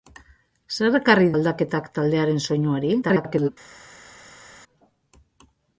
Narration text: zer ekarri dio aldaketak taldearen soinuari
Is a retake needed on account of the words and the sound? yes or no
yes